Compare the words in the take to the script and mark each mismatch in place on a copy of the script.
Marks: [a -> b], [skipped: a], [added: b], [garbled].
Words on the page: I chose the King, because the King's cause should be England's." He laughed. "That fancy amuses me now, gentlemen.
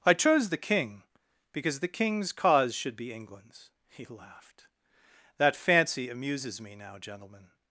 I chose the King, because the King's cause should be England's." He laughed. "That fancy amuses me now, gentlemen.